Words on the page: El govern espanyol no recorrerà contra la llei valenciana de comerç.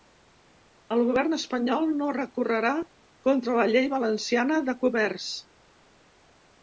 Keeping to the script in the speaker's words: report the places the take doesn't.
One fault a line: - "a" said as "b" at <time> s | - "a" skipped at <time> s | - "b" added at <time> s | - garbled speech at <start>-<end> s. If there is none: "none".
none